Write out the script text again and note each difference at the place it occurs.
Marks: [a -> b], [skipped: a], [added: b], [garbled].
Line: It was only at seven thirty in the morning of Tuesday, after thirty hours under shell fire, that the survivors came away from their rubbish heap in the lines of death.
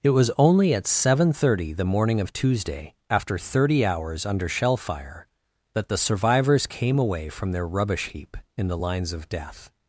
It was only at seven thirty [skipped: in] the morning of Tuesday, after thirty hours under shell fire, that the survivors came away from their rubbish heap in the lines of death.